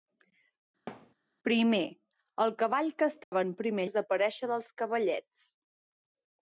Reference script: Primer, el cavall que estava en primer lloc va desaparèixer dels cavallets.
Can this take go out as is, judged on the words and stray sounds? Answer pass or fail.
fail